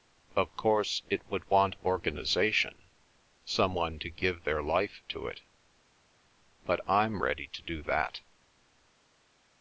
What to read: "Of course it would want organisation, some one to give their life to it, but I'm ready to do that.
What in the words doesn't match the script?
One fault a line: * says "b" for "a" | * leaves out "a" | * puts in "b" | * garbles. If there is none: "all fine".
all fine